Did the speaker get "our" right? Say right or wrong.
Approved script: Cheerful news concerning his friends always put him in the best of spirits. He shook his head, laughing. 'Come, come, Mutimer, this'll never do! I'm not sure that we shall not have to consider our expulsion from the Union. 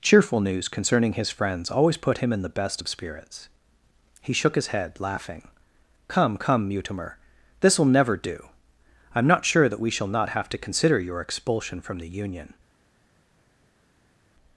wrong